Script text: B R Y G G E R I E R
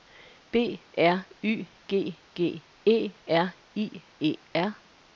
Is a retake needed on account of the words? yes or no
no